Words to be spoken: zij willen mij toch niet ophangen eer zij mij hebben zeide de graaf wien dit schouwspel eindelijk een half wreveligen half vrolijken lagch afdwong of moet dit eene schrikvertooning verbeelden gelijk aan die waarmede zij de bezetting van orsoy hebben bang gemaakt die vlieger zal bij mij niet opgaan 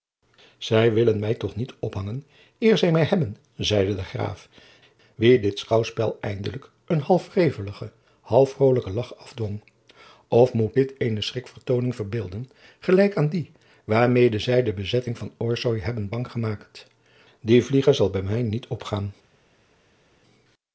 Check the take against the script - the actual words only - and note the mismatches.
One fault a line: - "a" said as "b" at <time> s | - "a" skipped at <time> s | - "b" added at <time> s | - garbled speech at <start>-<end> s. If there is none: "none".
none